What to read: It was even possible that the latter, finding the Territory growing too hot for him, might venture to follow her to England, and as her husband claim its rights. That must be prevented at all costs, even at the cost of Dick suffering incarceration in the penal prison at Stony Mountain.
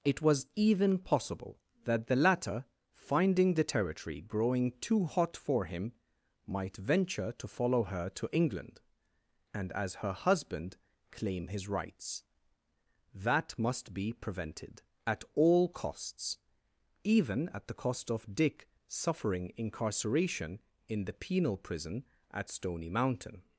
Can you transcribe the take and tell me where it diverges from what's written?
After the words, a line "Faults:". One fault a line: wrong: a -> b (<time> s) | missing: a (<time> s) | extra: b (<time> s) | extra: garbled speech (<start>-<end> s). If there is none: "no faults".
It was even possible that the latter, finding the Territory growing too hot for him, might venture to follow her to England, and as her husband claim his rights. That must be prevented at all costs, even at the cost of Dick suffering incarceration in the penal prison at Stony Mountain.
Faults:
wrong: its -> his (11.5 s)